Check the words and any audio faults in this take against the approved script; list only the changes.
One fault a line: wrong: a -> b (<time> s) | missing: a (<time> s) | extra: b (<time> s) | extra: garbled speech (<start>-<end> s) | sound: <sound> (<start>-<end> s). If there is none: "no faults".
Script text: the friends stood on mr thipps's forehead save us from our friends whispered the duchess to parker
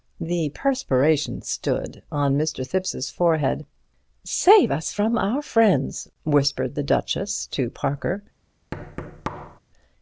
wrong: friends -> perspiration (0.5 s)
sound: thud (8.7-9.6 s)